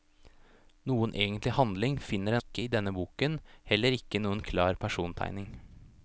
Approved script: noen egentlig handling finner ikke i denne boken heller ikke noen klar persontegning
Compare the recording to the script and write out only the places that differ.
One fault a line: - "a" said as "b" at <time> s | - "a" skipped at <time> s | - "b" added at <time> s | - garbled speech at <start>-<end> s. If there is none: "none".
none